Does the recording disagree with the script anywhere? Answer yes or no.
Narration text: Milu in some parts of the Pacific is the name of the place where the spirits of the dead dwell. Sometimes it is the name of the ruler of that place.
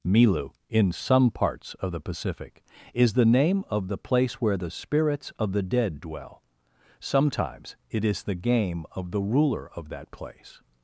yes